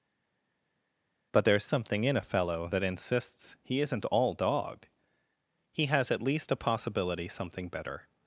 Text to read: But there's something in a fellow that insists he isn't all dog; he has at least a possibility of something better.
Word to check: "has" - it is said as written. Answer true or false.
true